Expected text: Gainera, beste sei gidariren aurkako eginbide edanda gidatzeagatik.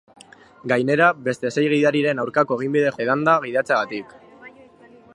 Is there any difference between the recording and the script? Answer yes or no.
no